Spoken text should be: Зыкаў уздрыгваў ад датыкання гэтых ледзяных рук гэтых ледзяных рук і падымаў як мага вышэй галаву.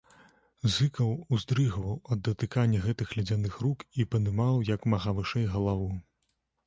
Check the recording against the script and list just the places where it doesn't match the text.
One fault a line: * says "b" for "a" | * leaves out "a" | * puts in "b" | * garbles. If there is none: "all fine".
* leaves out "гэтых ледзяных рук"